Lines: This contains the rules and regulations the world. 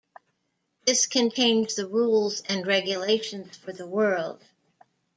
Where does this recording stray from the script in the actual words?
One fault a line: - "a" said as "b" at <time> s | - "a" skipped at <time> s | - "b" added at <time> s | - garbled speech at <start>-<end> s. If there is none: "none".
- "for" added at 3.5 s